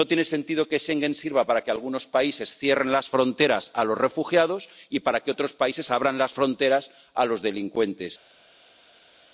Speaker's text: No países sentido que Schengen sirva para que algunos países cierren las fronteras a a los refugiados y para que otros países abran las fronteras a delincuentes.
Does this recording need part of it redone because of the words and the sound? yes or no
yes